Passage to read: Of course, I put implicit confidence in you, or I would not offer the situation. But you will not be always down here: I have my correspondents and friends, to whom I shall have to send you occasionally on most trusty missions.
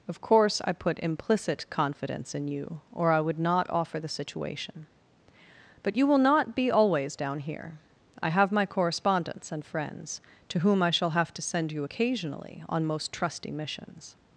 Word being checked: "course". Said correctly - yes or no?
yes